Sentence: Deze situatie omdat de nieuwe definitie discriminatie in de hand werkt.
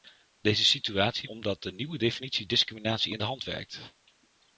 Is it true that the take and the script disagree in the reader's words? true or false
false